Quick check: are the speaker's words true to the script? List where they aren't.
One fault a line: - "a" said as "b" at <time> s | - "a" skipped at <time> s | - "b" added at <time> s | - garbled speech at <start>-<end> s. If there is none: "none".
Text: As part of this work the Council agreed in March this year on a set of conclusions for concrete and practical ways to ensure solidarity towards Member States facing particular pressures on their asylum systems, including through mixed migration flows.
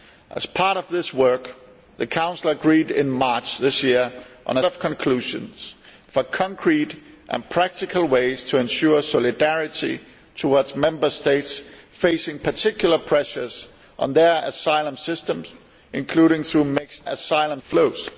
- "set" skipped at 4.6 s
- "migration" said as "asylum" at 17.1 s